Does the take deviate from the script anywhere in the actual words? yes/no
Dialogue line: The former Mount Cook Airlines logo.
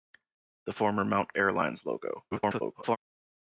yes